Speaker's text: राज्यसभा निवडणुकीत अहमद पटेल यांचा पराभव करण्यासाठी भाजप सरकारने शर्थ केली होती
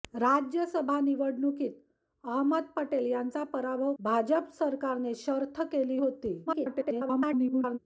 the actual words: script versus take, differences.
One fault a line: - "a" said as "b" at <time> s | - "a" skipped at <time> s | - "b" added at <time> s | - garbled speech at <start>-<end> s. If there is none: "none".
- "करण्यासाठी" skipped at 3.9 s
- garbled speech at 6.5-7.8 s